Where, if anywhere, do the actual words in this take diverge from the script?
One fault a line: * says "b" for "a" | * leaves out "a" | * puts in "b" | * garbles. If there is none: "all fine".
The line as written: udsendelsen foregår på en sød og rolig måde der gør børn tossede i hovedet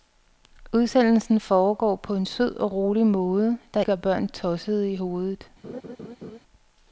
all fine